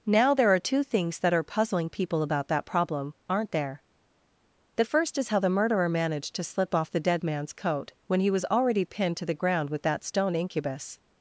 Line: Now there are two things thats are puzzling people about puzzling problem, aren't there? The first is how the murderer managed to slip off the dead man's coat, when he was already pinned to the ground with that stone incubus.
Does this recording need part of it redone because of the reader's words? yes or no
yes